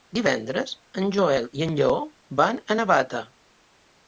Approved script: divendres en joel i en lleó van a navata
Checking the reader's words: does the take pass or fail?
pass